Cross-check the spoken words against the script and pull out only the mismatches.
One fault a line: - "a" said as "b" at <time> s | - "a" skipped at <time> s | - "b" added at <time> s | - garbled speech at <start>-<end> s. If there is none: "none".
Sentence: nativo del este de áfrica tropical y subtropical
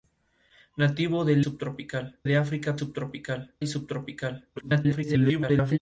- "este" said as "subtropical" at 1.4 s
- "tropical" said as "subtropical" at 2.7 s
- garbled speech at 4.6-5.8 s